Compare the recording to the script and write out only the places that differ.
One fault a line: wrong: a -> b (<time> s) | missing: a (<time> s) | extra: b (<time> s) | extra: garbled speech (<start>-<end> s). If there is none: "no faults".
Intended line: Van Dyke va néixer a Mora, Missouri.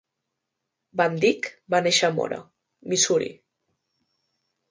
no faults